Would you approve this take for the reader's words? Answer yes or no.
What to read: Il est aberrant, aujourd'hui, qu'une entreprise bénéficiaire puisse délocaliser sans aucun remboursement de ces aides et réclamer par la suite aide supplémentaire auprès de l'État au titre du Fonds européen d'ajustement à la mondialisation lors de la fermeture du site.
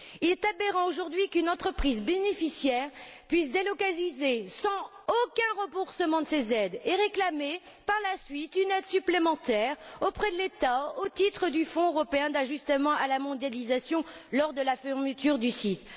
no